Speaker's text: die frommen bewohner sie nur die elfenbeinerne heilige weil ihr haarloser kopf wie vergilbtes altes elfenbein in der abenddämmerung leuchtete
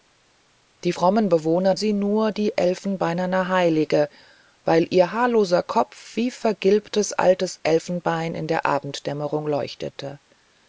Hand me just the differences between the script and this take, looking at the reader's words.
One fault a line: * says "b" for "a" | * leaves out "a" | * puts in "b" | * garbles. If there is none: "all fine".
all fine